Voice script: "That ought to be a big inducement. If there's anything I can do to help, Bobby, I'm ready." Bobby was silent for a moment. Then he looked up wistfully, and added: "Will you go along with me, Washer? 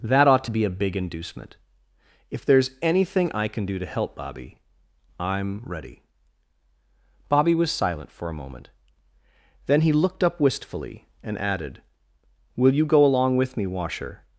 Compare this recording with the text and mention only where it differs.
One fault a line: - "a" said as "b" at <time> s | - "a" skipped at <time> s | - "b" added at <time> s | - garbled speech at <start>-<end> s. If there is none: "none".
none